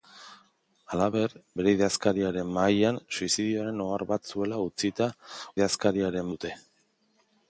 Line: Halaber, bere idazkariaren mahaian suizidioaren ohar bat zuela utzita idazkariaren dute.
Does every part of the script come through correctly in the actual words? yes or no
yes